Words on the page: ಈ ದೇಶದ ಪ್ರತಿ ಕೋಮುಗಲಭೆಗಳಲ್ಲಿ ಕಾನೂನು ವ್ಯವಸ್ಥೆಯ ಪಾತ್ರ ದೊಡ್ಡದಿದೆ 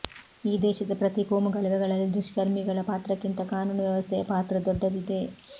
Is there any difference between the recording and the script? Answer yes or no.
yes